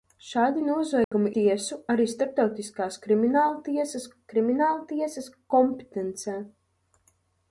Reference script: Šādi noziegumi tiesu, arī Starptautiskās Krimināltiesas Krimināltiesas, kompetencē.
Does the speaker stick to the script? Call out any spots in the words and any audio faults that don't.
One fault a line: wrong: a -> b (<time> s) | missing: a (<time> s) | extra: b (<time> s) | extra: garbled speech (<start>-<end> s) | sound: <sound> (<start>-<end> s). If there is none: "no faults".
sound: dropout (1.0-1.1 s)